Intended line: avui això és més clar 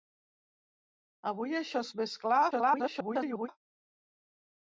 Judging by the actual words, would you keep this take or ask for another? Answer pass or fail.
fail